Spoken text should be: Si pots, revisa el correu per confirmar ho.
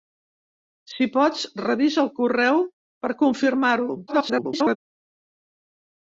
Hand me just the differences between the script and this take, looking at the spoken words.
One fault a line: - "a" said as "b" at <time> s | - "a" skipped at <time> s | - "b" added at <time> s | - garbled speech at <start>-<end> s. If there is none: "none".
- garbled speech at 4.1-4.8 s